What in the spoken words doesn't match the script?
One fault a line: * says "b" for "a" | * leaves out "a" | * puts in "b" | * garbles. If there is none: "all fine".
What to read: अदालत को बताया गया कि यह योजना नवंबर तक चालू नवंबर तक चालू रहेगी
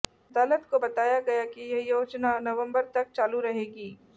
* leaves out "नवंबर तक चालू"